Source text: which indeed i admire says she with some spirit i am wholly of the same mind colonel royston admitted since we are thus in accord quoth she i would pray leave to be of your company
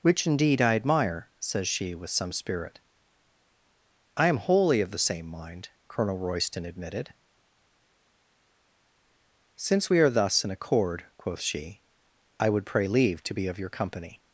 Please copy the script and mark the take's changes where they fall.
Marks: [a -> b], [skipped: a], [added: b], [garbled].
which indeed i admire says she with some spirit i am wholly of the same mind colonel royston admitted since we are thus in accord quoth she i would pray leave to be of your company